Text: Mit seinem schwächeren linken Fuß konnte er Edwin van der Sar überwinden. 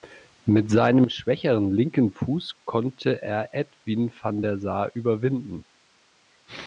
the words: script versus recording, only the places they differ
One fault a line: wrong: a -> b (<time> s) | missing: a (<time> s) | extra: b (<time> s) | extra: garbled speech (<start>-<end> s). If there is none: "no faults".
no faults